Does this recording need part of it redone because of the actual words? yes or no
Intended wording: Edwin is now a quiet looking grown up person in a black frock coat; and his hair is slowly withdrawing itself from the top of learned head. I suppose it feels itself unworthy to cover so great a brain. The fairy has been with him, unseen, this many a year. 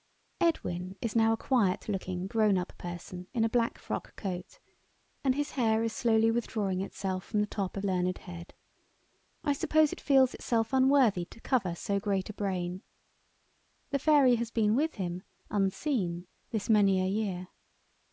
no